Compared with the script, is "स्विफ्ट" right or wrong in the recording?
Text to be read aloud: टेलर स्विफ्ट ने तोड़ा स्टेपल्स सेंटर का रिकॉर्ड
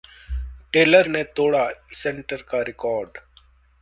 wrong